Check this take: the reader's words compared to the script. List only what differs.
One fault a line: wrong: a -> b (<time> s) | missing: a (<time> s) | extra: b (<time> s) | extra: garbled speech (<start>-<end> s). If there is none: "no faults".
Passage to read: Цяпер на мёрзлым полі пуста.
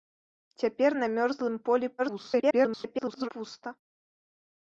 extra: garbled speech (2.0-3.3 s)